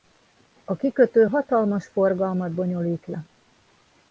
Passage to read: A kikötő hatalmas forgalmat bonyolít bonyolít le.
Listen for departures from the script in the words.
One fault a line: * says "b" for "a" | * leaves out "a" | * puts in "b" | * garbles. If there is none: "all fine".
* leaves out "bonyolít"